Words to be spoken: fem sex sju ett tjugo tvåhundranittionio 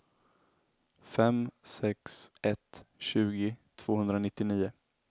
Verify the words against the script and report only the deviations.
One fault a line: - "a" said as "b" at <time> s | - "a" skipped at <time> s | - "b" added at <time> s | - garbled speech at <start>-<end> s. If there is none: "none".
- "sju" skipped at 2.3 s